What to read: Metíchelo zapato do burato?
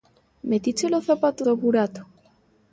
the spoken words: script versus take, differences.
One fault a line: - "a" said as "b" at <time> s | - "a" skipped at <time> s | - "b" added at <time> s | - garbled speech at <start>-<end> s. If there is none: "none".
none